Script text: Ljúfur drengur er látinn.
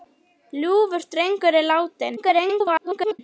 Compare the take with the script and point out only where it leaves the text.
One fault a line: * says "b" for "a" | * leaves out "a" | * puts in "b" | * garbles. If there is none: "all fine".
* garbles